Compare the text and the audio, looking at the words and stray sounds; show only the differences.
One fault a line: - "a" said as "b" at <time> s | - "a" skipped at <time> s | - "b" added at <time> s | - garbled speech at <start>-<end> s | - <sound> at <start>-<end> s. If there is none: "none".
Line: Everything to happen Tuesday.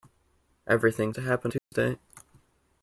- dropout at 1.6-1.7 s